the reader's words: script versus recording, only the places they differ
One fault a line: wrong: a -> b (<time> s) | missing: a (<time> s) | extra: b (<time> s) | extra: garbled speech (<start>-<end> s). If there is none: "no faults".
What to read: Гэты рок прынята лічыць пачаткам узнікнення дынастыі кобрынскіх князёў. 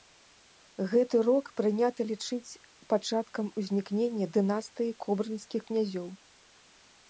no faults